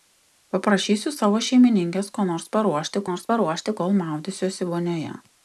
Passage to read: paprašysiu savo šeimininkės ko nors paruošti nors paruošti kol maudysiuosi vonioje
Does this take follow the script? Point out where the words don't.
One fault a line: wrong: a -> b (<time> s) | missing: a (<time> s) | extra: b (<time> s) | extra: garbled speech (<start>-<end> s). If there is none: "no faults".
no faults